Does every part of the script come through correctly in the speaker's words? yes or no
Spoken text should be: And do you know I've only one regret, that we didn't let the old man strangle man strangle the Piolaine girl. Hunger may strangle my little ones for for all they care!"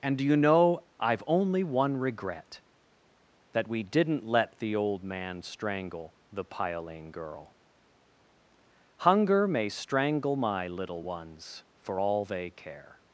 no